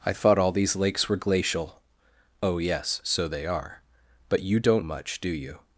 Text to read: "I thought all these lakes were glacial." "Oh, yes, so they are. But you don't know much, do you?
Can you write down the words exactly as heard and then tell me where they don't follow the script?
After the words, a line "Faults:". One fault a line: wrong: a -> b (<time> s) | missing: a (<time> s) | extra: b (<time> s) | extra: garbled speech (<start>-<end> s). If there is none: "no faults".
"I thought all these lakes were glacial." "Oh, yes, so they are. But you don't much, do you?
Faults:
missing: know (4.8 s)